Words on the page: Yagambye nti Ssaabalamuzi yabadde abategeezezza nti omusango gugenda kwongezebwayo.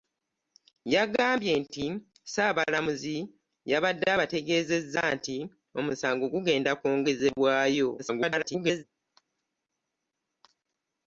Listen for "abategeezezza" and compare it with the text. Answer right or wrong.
right